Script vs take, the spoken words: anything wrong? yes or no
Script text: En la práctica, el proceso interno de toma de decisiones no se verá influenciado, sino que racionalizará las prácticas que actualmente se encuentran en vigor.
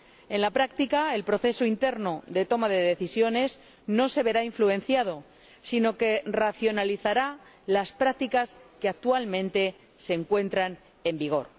no